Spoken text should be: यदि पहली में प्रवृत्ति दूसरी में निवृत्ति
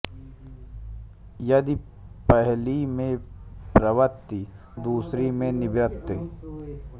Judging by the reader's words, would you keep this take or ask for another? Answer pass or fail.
pass